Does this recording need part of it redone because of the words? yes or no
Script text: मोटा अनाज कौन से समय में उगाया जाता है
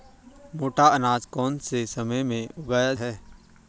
yes